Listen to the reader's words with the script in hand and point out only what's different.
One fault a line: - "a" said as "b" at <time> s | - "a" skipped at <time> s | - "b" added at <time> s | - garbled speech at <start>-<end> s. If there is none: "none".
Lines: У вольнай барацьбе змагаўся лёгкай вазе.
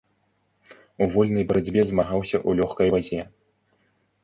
- "ў" added at 2.5 s